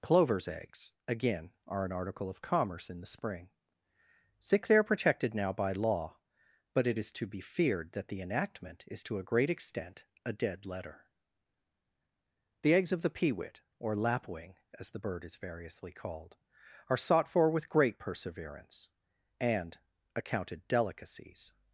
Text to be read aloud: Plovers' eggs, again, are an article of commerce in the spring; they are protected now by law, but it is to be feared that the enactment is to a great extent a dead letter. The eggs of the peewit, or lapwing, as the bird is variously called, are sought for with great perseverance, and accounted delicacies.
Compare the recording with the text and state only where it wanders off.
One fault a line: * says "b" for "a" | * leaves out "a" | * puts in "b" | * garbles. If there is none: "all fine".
* puts in "sick"